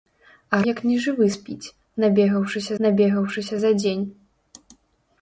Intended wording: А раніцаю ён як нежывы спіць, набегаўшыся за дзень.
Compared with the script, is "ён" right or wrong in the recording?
wrong